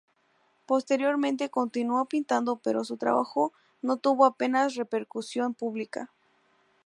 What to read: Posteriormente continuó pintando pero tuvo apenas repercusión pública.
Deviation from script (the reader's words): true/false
true